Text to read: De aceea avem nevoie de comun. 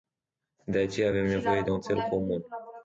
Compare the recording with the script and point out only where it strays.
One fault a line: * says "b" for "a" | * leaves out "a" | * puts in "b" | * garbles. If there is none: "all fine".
* puts in "un țel"